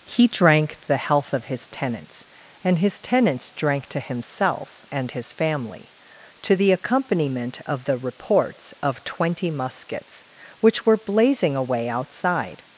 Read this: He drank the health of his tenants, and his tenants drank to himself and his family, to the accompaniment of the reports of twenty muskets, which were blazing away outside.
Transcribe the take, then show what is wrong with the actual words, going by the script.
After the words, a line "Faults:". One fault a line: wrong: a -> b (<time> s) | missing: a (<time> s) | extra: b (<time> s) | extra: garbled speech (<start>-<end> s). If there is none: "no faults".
He drank the health of his tenants, and his tenants drank to himself and his family, to the accompaniment of the reports of twenty muskets, which were blazing away outside.
Faults:
no faults